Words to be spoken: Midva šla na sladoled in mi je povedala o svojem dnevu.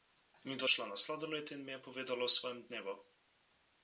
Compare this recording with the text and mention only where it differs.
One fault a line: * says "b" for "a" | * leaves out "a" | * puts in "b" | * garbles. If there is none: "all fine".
all fine